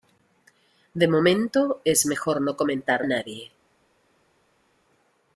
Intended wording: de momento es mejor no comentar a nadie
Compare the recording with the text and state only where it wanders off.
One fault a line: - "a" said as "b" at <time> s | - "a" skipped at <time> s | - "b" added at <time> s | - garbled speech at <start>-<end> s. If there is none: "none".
none